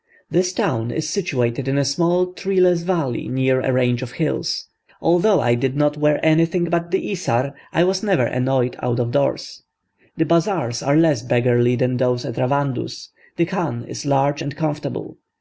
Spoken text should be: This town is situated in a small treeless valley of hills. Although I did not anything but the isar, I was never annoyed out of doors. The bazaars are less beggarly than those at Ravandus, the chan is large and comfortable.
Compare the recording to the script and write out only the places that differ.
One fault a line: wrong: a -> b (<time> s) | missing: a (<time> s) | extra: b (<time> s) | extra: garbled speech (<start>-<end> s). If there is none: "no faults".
extra: near a range (3.3 s)
extra: wear (6.0 s)